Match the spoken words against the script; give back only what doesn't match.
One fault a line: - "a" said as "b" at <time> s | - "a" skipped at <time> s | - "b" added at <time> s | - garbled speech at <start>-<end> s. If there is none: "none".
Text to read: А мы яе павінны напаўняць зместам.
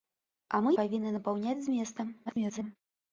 - "яе" skipped at 0.7 s
- garbled speech at 2.3-2.8 s